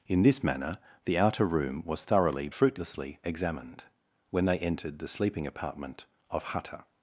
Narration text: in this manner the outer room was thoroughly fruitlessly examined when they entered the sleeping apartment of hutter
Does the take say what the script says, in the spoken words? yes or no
yes